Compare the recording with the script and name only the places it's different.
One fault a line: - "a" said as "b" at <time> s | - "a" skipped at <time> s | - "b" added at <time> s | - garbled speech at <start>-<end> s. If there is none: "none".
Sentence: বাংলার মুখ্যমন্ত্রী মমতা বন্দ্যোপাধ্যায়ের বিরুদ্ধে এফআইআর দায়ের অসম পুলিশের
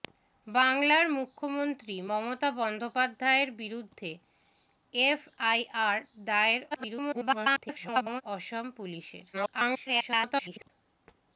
- garbled speech at 6.7-8.2 s
- garbled speech at 9.3-10.7 s